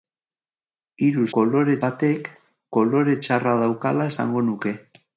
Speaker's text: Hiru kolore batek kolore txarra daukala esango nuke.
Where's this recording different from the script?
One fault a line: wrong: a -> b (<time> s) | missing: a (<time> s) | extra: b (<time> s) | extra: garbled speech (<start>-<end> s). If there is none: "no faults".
no faults